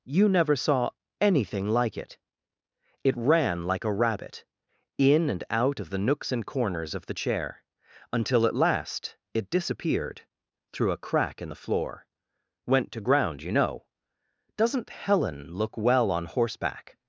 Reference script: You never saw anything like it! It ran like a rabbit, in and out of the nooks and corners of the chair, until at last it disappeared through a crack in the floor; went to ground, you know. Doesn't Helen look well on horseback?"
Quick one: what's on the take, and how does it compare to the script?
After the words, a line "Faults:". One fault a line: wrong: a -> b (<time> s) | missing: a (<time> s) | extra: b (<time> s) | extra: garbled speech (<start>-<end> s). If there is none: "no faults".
You never saw anything like it! It ran like a rabbit, in and out of the nooks and corners of the chair, until at last it disappeared through a crack in the floor; went to ground, you know. Doesn't Helen look well on horseback?"
Faults:
no faults